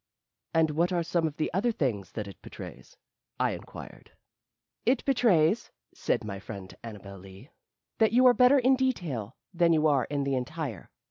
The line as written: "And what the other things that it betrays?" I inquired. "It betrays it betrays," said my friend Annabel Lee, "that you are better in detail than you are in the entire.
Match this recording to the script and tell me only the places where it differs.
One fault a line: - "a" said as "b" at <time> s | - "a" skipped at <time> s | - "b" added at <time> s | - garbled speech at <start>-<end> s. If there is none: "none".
- "are some of" added at 0.9 s
- "it betrays" skipped at 5.7 s